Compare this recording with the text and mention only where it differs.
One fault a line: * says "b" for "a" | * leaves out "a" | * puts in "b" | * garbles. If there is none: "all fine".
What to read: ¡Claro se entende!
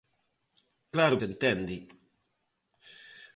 all fine